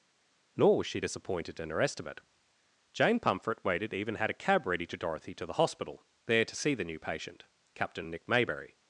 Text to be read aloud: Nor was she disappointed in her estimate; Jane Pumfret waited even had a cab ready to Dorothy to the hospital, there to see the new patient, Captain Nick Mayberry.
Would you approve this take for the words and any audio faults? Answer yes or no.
yes